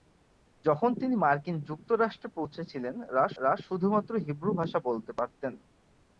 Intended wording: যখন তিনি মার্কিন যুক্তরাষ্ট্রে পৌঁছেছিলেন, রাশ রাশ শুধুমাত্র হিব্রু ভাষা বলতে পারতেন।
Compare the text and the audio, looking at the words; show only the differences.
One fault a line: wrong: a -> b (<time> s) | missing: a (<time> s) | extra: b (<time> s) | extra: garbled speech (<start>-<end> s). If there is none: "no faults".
no faults